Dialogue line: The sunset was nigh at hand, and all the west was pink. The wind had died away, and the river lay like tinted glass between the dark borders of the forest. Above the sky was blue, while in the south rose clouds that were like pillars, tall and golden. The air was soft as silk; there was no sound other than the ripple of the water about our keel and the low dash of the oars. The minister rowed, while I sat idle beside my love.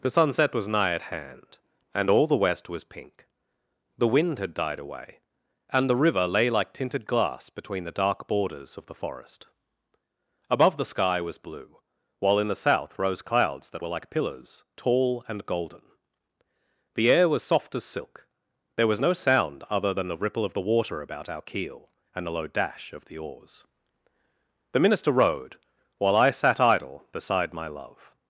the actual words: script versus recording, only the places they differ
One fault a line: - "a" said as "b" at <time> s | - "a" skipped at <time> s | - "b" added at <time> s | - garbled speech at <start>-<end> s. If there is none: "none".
none